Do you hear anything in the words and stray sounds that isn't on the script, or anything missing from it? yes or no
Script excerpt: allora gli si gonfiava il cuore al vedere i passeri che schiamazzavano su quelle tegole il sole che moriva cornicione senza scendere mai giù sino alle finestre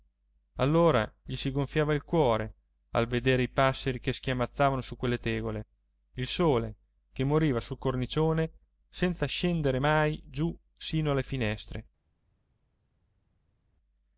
yes